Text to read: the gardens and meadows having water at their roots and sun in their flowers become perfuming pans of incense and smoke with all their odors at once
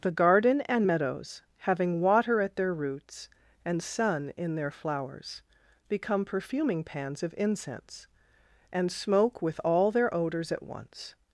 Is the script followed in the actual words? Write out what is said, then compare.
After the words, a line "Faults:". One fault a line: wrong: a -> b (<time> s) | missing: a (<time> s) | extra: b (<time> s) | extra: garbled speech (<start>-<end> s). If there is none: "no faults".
the garden and meadows having water at their roots and sun in their flowers become perfuming pans of incense and smoke with all their odors at once
Faults:
wrong: gardens -> garden (0.1 s)